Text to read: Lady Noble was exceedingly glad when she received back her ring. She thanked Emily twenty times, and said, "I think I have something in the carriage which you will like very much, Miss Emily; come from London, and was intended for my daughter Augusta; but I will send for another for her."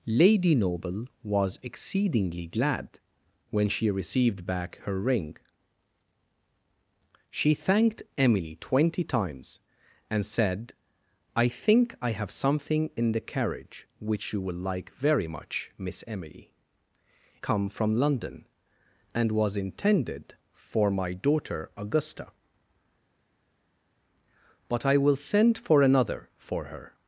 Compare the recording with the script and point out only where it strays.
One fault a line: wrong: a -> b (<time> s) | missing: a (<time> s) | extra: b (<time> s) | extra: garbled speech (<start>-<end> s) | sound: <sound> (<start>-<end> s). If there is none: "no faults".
no faults